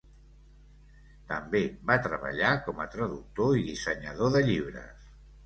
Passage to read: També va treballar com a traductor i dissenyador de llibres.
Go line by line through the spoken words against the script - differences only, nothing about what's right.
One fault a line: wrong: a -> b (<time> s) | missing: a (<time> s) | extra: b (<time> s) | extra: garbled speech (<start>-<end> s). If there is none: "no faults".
no faults